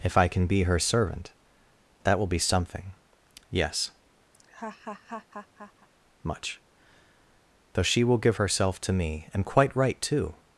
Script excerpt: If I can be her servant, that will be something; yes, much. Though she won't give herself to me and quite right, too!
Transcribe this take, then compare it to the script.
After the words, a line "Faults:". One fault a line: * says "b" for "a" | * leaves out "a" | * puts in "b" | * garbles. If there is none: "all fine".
If I can be her servant, that will be something; yes, much. Though she will give herself to me and quite right, too!
Faults:
* says "will" for "won't"